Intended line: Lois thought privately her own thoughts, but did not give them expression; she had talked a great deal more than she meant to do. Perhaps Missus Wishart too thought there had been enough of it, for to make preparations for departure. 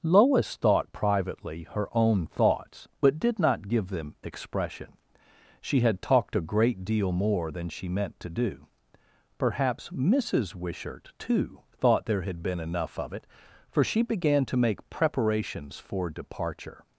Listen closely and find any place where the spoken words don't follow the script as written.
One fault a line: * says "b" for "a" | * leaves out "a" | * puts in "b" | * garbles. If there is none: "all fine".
* puts in "she began"